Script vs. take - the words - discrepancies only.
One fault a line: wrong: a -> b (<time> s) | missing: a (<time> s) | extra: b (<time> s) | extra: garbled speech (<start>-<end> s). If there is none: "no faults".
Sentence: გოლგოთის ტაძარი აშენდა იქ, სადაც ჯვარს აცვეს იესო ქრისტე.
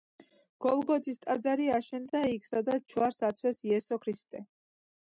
no faults